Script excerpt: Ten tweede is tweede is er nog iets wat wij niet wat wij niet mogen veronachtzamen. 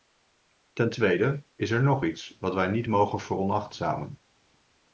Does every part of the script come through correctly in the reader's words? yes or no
no